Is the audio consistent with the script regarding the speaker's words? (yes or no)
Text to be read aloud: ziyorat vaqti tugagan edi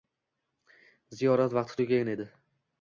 yes